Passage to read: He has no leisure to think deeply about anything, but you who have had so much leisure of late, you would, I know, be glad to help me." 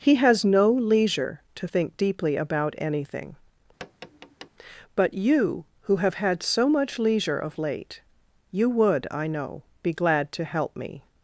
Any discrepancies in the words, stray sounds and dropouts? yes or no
yes